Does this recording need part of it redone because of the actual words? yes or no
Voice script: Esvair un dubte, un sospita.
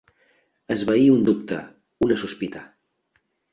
yes